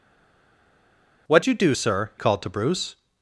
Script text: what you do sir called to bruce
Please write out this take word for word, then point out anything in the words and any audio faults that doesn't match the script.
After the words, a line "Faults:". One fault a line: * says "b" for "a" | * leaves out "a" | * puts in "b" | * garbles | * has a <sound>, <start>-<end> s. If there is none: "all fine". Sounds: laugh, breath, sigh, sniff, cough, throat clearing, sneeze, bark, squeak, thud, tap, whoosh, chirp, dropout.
what you do sir called to bruce
Faults:
all fine